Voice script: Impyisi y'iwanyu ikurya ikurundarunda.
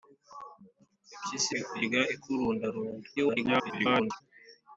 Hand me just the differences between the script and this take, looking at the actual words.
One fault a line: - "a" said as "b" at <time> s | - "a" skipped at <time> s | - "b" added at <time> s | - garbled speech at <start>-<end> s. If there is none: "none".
- "y'iwanyu" skipped at 1.5 s
- garbled speech at 3.2-4.2 s